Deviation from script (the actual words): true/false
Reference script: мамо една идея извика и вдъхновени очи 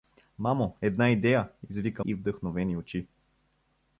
false